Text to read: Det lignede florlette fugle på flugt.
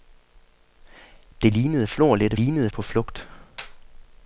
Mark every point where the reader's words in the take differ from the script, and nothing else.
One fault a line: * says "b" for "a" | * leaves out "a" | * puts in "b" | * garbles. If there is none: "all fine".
* says "lignede" for "fugle"